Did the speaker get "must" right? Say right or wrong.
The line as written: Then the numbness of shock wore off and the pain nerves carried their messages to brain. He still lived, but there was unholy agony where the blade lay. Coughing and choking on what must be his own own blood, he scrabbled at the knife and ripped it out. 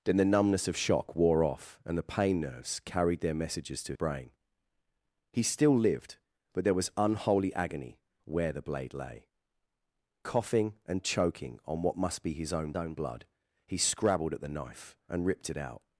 right